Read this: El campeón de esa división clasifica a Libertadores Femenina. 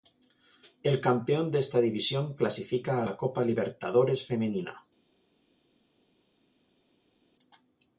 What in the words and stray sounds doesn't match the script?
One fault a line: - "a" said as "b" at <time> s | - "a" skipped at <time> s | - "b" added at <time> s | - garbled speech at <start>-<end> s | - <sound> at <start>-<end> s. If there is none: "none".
- "esa" said as "esta" at 1.6 s
- "la Copa" added at 3.0 s